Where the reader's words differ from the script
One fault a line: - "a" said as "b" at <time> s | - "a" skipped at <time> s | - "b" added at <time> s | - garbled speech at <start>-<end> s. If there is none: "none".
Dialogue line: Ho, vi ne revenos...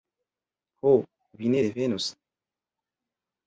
none